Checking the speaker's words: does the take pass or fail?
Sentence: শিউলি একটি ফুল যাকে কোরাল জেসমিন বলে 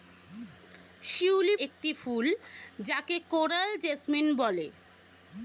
pass